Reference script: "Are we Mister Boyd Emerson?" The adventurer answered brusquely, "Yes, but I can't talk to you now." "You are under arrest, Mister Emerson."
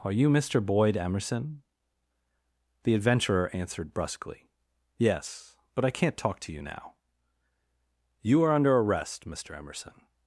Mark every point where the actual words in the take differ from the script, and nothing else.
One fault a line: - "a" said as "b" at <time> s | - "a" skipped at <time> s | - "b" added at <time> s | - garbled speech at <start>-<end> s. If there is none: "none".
- "we" said as "you" at 0.1 s